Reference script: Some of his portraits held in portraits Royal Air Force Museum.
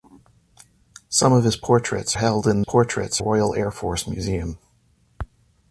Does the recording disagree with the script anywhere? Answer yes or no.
no